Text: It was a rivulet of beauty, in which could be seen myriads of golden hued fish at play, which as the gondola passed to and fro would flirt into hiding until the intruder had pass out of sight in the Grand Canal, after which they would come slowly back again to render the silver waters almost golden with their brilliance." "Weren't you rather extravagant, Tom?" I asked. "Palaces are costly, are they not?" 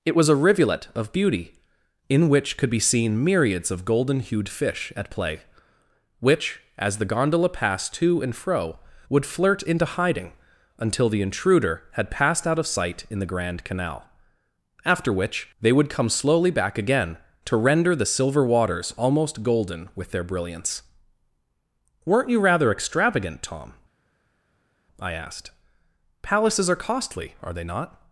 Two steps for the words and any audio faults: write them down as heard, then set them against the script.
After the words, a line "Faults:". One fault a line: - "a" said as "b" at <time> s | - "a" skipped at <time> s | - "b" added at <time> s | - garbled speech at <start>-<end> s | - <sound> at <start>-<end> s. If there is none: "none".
It was a rivulet of beauty, in which could be seen myriads of golden hued fish at play, which as the gondola passed to and fro would flirt into hiding until the intruder had passed out of sight in the Grand Canal, after which they would come slowly back again to render the silver waters almost golden with their brilliance." "Weren't you rather extravagant, Tom?" I asked. "Palaces are costly, are they not?"
Faults:
- "pass" said as "passed" at 12.1 s